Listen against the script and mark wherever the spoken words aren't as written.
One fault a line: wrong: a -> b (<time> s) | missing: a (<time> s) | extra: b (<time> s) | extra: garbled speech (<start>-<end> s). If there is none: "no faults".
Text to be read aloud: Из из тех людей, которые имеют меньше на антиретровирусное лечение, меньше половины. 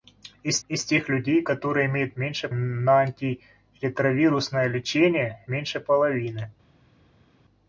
no faults